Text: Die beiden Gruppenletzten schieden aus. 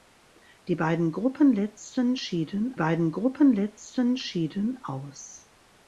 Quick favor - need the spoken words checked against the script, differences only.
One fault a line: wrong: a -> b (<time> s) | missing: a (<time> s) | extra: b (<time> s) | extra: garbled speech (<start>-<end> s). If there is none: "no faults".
extra: beiden Gruppenletzten schieden (2.7 s)